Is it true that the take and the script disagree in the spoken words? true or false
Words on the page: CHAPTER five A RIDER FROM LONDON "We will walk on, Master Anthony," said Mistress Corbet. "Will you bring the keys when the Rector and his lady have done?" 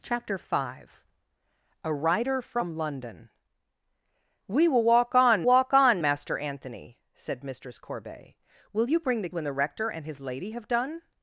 true